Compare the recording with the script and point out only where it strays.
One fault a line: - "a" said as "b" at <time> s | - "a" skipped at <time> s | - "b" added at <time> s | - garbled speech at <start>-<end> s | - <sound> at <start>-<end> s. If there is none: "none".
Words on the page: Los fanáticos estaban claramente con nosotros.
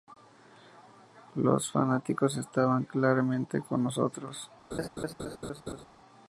- laugh at 4.7-5.9 s